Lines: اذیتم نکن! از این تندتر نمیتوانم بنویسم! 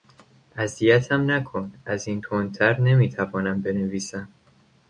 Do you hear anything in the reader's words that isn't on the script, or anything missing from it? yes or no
no